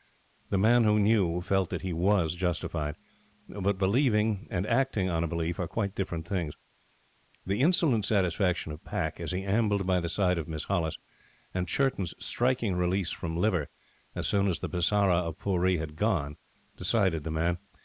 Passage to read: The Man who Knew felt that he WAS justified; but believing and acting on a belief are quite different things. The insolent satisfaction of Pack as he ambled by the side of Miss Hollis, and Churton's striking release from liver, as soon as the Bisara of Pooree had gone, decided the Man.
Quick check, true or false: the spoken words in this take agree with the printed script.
true